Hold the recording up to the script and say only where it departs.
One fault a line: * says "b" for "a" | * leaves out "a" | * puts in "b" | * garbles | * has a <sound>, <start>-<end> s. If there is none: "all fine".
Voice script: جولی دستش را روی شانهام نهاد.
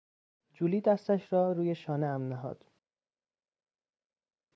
all fine